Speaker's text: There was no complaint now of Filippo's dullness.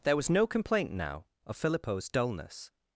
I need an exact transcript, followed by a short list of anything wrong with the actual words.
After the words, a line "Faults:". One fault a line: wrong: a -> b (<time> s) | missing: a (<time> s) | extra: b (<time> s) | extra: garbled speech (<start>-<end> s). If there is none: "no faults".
There was no complaint now of Filippo's dullness.
Faults:
no faults